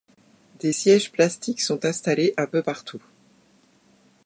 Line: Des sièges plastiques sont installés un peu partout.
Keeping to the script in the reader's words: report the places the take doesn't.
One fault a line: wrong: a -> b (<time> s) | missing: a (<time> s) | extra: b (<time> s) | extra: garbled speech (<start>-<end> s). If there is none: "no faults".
no faults